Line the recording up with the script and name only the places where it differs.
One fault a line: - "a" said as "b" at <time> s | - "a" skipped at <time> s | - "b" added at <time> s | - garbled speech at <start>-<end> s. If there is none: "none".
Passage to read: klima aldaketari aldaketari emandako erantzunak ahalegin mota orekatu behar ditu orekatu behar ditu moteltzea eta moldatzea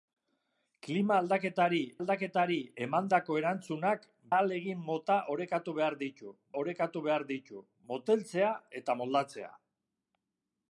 none